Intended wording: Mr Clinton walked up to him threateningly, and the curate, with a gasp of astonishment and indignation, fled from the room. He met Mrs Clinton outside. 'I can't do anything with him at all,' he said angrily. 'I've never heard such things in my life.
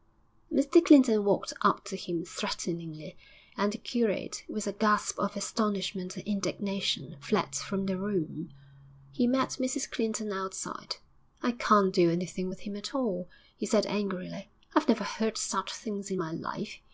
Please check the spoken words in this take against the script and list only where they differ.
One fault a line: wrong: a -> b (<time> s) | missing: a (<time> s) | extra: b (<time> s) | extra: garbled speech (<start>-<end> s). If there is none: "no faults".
no faults